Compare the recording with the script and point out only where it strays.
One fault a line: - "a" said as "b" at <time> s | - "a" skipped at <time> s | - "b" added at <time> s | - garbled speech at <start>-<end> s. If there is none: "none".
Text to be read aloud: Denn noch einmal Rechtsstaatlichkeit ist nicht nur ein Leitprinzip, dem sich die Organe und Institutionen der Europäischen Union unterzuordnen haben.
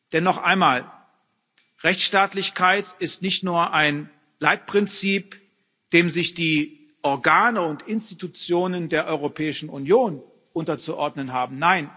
none